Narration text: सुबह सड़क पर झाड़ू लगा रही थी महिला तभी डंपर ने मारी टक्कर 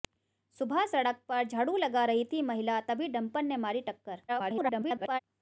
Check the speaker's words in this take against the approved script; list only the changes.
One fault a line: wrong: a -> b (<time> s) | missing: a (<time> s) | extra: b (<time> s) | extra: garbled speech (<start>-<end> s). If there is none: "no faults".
extra: garbled speech (4.3-5.2 s)